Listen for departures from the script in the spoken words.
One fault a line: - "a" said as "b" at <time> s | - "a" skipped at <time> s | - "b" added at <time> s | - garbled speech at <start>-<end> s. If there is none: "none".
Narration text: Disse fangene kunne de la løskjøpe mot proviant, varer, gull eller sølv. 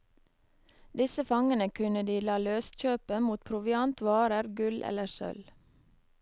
none